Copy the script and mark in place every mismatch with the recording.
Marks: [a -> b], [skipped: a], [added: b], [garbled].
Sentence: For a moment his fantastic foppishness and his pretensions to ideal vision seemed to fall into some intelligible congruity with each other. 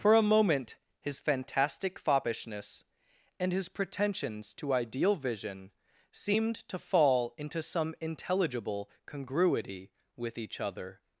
For a moment his fantastic foppishness and his pretensions to ideal vision seemed to fall into some intelligible congruity with each other.